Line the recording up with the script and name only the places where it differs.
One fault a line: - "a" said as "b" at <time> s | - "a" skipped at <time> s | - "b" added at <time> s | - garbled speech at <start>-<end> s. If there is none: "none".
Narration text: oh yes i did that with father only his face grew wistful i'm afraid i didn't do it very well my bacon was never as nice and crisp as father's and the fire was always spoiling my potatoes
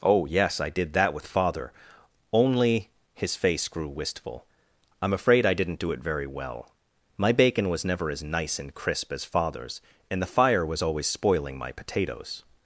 none